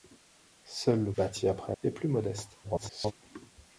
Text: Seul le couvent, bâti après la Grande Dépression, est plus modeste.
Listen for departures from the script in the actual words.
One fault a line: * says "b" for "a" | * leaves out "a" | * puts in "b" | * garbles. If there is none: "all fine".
* leaves out "couvent"
* leaves out "la Grande Dépression"
* garbles